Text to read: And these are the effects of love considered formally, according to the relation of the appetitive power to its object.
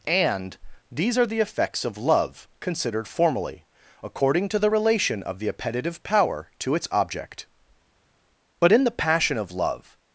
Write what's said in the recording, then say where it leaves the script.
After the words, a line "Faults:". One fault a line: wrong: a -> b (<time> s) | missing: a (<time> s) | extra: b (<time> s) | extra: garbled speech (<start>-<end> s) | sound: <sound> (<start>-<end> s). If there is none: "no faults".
And these are the effects of love considered formally, according to the relation of the appetitive power to its object. But in the passion of love
Faults:
extra: But in the passion of love (8.6 s)